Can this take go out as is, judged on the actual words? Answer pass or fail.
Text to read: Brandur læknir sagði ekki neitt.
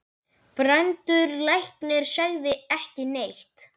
pass